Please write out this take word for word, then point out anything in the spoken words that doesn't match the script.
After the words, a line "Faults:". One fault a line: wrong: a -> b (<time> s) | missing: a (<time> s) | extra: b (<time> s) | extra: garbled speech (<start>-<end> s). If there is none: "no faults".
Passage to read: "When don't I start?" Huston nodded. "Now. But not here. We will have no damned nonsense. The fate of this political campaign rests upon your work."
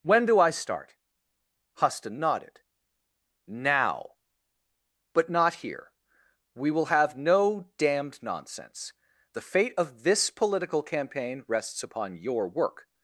"When do I start?" Huston nodded. "Now. But not here. We will have no damned nonsense. The fate of this political campaign rests upon your work."
Faults:
wrong: don't -> do (0.2 s)